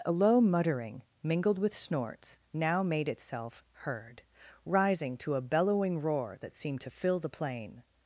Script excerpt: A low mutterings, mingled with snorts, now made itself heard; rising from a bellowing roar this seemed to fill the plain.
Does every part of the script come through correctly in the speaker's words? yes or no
no